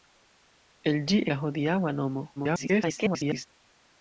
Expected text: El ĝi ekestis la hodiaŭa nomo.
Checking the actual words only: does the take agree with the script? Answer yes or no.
no